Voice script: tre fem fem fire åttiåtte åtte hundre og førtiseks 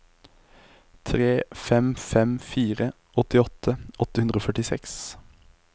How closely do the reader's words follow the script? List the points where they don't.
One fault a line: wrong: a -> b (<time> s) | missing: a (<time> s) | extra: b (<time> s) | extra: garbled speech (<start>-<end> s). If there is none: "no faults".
no faults